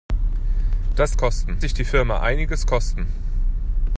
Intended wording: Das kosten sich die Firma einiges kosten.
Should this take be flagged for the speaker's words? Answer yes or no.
no